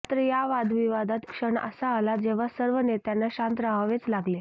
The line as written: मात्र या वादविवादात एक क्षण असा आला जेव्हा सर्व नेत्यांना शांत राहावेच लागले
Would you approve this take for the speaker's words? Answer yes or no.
no